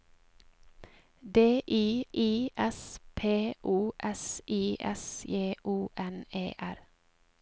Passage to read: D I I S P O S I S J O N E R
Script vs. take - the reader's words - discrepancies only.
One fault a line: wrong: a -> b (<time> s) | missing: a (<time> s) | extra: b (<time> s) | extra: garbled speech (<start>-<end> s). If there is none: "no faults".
no faults